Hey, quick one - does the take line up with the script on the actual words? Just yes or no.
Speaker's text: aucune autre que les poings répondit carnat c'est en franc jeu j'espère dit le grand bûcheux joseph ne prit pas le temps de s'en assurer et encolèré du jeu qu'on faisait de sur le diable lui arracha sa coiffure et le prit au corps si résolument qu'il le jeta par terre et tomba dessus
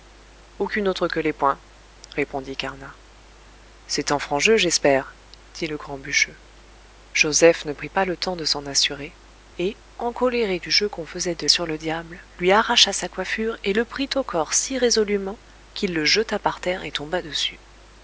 yes